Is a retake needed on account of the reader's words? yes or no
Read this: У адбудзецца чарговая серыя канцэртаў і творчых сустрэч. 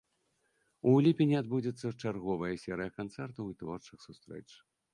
yes